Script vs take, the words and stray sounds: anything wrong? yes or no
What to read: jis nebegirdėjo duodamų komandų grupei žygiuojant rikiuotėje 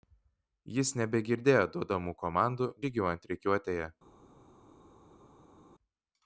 yes